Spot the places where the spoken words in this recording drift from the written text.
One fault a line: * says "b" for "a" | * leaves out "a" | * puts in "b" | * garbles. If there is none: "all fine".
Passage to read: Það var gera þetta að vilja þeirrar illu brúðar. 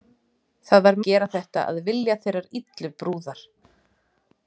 all fine